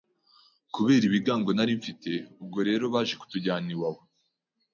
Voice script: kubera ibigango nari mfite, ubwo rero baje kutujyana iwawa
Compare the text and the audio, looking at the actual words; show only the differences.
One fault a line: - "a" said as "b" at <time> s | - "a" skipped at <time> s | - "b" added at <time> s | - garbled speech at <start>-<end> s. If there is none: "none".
none